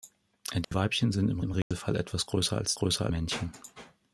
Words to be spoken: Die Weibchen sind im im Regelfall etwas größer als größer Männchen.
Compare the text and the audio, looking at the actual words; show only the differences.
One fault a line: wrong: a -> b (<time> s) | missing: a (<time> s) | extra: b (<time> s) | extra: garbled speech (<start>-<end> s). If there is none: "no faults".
no faults